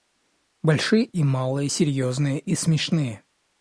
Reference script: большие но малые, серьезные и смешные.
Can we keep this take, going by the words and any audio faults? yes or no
no